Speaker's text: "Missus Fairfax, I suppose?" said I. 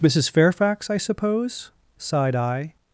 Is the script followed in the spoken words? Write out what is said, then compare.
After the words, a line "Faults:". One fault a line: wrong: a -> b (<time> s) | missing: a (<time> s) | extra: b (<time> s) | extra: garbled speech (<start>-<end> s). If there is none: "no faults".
"Missus Fairfax, I suppose?" sighed I.
Faults:
wrong: said -> sighed (2.0 s)